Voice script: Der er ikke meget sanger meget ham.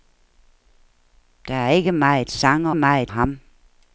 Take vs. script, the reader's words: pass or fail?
pass